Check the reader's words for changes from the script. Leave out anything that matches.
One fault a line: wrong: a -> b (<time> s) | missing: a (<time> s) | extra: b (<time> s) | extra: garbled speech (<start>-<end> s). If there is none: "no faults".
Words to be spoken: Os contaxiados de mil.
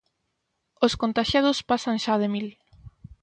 extra: pasan xa (1.7 s)